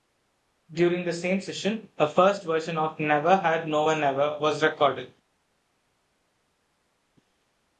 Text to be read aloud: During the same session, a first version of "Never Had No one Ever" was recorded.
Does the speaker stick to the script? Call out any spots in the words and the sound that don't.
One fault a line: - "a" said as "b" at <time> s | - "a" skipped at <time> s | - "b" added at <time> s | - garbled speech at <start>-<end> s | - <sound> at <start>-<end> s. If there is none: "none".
none